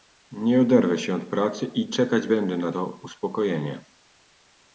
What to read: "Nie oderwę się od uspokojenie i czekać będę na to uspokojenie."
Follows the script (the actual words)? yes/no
no